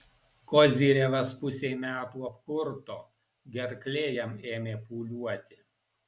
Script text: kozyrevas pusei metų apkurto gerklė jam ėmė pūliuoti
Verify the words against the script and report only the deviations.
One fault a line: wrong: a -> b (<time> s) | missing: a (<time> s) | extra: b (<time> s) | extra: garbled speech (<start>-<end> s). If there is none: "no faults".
no faults